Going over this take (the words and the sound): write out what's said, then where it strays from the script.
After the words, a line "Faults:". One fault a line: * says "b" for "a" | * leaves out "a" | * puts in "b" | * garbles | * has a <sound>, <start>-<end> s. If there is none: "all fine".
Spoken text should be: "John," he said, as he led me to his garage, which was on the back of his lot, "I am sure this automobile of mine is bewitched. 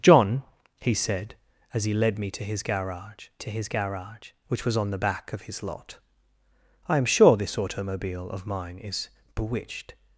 "John," he said, as he led me to his garage to his garage, which was on the back of his lot, "I am sure this automobile of mine is bewitched.
Faults:
* puts in "to his garage"